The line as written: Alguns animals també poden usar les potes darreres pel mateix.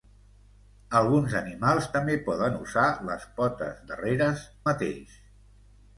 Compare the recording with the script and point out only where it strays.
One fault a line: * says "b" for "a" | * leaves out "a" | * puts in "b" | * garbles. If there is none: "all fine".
* leaves out "pel"